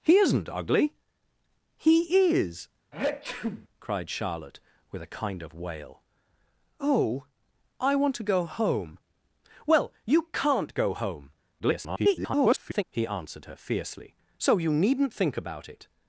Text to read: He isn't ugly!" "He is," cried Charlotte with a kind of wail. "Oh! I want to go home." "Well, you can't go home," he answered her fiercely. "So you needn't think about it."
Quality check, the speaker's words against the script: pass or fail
fail